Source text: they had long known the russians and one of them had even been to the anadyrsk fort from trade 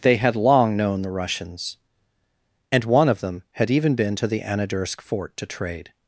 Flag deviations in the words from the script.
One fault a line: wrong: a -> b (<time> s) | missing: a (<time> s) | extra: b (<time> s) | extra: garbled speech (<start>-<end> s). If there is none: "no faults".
wrong: from -> to (5.4 s)